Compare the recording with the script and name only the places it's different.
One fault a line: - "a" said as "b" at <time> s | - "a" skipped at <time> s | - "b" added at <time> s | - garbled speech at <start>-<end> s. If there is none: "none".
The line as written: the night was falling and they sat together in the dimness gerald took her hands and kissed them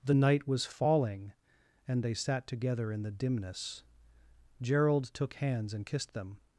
- "her" skipped at 5.3 s